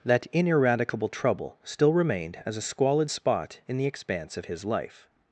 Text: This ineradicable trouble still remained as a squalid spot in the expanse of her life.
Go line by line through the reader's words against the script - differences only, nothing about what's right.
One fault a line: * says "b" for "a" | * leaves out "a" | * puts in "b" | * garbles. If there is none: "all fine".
* says "That" for "This"
* says "his" for "her"